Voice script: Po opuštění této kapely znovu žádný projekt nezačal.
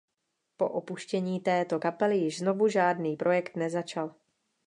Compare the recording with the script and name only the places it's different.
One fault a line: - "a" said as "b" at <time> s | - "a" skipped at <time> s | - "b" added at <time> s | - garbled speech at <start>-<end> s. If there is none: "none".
- "již" added at 2.2 s